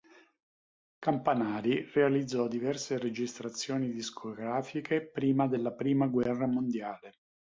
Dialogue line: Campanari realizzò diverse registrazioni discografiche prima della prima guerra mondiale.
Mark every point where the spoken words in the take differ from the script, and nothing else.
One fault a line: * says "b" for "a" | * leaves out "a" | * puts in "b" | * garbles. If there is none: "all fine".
all fine